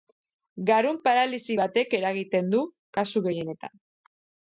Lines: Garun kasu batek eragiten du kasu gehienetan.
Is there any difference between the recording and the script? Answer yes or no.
yes